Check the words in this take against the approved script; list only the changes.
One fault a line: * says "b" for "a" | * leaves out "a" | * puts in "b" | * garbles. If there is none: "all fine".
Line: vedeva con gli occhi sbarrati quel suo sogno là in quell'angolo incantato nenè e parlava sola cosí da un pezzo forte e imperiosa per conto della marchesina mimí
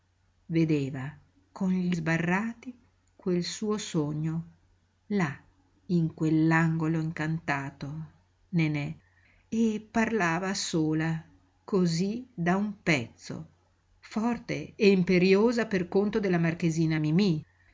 * leaves out "occhi"